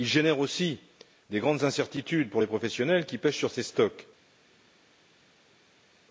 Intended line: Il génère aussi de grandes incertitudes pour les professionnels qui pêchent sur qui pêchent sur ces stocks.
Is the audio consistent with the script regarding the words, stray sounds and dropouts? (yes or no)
no